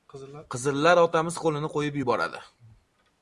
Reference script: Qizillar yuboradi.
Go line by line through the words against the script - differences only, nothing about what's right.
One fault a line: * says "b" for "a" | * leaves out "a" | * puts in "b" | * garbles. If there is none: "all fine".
* puts in "otamiz qo‘lini qo‘yib"